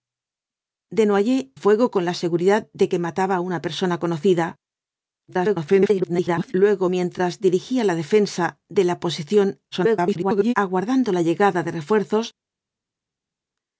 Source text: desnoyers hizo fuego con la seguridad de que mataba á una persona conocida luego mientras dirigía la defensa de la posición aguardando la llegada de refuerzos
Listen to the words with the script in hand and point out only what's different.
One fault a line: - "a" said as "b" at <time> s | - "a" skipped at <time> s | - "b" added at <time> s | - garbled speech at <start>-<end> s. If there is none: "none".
- "hizo" skipped at 1.4 s
- garbled speech at 5.3-6.5 s
- garbled speech at 9.7-10.5 s